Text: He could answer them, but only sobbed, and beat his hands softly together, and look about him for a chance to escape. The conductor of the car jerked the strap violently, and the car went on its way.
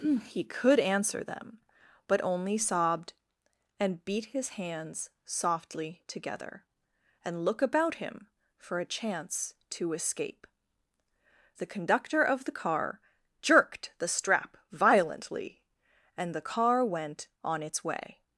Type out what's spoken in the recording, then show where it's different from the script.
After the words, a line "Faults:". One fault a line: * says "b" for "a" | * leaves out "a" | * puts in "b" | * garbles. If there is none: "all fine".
He could answer them, but only sobbed, and beat his hands softly together, and look about him for a chance to escape. The conductor of the car jerked the strap violently, and the car went on its way.
Faults:
all fine